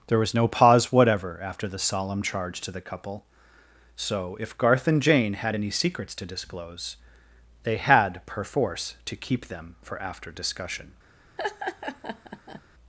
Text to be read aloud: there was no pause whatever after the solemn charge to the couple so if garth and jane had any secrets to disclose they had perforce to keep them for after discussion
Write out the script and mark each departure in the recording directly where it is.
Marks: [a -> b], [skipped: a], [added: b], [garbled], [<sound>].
there was no pause whatever after the solemn charge to the couple so if garth and jane had any secrets to disclose they had perforce to keep them for after discussion [laugh]